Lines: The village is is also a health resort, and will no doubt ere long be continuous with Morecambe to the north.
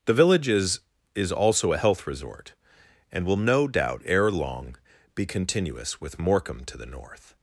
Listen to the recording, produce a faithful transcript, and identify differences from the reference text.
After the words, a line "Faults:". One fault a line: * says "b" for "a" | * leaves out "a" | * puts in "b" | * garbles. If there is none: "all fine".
The village is is also a health resort, and will no doubt ere long be continuous with Morecambe to the north.
Faults:
all fine